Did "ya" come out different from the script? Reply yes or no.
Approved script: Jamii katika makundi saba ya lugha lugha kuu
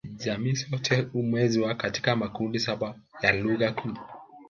no